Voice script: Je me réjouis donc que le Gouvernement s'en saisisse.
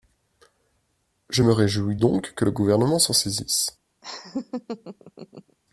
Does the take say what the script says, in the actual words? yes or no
yes